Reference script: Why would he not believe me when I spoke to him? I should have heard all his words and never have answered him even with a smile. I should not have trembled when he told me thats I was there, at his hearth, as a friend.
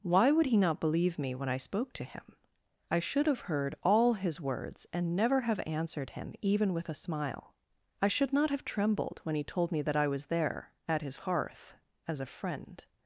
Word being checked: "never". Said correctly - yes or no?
yes